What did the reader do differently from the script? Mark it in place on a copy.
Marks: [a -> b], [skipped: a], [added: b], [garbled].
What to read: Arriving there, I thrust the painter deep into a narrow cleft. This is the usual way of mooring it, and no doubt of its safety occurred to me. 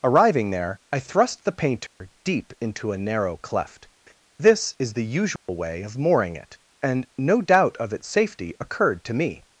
Arriving there, I thrust the painter deep into a narrow cleft. This is the usual way of mooring it, and no doubt of its safety occurred to me.